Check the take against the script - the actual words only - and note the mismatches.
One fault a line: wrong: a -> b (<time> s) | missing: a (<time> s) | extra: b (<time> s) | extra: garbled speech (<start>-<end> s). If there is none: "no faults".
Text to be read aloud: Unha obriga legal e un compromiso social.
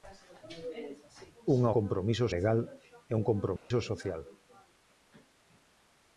wrong: obriga -> compromiso (1.8 s)